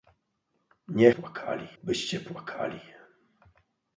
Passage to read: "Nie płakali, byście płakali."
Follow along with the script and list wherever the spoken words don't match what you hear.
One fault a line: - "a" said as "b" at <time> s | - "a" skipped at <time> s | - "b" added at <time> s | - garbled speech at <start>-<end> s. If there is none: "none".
none